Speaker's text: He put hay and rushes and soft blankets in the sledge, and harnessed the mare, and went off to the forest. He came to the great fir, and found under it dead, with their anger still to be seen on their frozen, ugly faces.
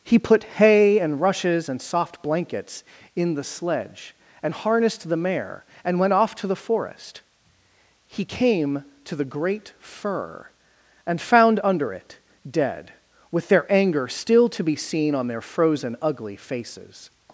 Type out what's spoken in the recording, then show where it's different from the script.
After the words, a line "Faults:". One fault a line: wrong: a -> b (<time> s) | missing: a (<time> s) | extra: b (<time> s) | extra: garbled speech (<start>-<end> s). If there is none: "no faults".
He put hay and rushes and soft blankets in the sledge, and harnessed the mare, and went off to the forest. He came to the great fir, and found under it dead, with their anger still to be seen on their frozen, ugly faces.
Faults:
no faults